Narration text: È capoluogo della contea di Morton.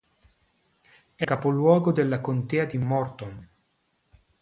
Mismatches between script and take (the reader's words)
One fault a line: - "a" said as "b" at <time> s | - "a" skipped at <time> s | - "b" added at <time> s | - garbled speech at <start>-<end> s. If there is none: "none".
none